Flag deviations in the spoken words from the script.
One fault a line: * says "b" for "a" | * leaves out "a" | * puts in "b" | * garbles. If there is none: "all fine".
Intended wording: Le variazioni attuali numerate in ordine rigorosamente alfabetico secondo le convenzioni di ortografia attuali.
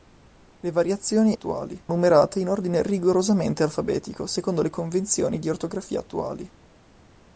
all fine